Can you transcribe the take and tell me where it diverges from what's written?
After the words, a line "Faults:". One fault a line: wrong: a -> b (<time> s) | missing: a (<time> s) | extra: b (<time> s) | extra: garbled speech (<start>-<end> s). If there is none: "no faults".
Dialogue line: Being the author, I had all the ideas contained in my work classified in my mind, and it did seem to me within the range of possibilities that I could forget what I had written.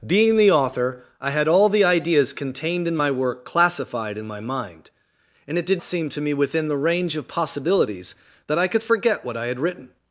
Being the author, I had all the ideas contained in my work classified in my mind, and it did seem to me within the range of possibilities that I could forget what I had written.
Faults:
no faults